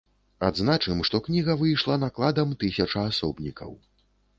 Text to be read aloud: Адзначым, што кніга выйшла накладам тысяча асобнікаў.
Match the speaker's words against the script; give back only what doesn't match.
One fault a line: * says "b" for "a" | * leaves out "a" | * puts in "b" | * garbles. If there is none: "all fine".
all fine